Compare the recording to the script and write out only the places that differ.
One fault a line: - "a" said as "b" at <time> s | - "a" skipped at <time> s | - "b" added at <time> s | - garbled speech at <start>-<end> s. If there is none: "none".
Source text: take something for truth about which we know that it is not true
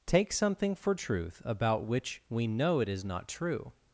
- "that" skipped at 2.8 s